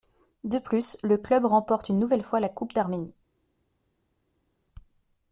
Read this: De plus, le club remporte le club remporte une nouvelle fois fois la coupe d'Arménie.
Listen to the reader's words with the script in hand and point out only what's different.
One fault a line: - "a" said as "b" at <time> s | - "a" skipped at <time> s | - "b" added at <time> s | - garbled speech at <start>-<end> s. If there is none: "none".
- "le club remporte" skipped at 1.9 s
- "fois" skipped at 2.4 s